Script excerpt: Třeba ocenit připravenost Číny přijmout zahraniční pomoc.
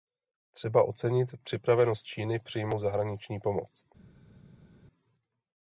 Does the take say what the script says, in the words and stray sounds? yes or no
yes